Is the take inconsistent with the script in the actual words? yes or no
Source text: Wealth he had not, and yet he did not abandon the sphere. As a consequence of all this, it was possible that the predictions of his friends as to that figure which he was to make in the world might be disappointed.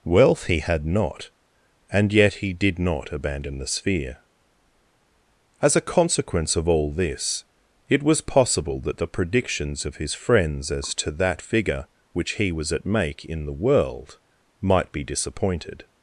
yes